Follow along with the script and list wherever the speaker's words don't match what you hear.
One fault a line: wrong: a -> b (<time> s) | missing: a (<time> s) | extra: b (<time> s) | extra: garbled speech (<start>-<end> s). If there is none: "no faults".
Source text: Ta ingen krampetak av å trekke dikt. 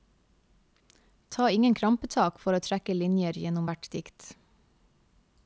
wrong: av -> for (2.4 s)
extra: linjer gjennom hvert (3.0 s)